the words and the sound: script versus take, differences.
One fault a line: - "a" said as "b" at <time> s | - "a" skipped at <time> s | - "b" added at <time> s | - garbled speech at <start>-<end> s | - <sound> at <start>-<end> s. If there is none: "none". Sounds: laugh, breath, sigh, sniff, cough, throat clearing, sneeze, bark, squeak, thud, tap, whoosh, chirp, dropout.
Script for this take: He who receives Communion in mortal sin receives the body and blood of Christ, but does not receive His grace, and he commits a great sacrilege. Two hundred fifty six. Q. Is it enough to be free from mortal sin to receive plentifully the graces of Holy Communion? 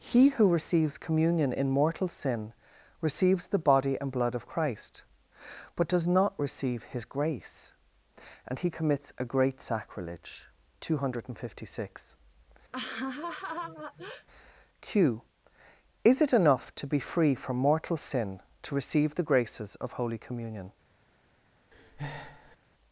- laugh at 12.7-14.3 s
- "plentifully" skipped at 19.1 s
- breath at 21.7-22.6 s